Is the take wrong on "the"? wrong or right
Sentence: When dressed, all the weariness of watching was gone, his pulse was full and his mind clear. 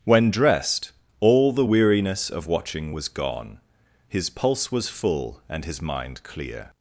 right